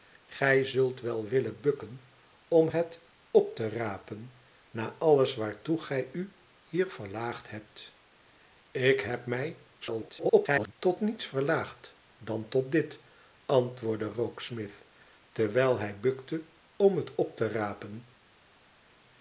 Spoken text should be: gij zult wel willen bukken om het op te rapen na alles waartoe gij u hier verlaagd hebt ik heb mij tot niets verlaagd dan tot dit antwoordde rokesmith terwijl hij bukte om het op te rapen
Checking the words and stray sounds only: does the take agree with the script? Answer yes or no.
no